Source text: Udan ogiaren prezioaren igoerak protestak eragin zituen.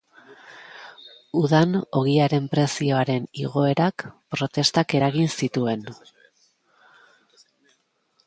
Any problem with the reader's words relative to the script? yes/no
no